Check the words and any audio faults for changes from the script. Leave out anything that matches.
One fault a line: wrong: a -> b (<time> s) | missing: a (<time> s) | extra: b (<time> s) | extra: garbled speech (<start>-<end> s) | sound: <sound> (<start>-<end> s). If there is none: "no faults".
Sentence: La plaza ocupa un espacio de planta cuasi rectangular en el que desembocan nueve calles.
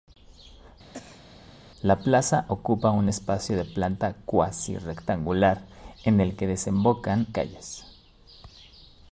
sound: cough (0.9-1.3 s)
missing: nueve (7.3 s)